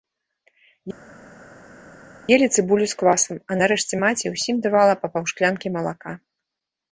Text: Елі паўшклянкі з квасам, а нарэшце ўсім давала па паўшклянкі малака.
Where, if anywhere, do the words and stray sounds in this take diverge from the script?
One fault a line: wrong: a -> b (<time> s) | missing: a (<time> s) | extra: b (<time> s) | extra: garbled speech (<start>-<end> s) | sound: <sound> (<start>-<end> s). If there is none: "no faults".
wrong: паўшклянкі -> цыбулю (2.5 s)
extra: маці (4.1 s)